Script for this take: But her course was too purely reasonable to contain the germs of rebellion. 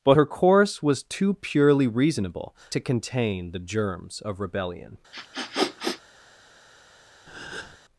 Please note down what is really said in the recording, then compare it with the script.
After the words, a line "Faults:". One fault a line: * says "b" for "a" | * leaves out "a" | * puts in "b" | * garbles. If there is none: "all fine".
But her course was too purely reasonable to contain the germs of rebellion.
Faults:
all fine